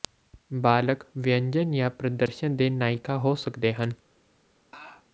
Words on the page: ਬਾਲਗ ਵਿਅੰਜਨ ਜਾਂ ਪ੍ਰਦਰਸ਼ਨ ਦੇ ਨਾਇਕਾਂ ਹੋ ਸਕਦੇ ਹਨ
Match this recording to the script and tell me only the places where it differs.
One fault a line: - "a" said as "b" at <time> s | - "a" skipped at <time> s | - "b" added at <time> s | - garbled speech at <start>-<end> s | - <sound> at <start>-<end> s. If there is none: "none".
- laugh at 4.7-5.1 s